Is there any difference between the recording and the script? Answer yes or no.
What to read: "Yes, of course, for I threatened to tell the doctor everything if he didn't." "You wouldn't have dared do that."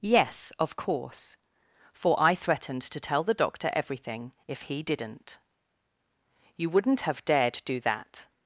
no